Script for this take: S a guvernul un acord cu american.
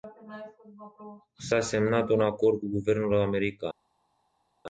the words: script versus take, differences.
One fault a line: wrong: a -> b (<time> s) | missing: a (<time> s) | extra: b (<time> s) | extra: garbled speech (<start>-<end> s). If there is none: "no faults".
wrong: guvernul -> semnat (1.6 s)
extra: guvernul (2.7 s)